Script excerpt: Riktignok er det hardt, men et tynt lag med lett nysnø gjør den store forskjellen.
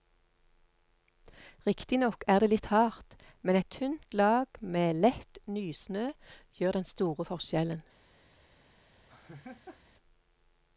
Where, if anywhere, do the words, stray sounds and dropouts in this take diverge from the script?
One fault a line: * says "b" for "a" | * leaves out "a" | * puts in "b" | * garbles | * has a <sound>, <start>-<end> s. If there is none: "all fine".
* puts in "litt"
* has a laugh, 9.1-9.8 s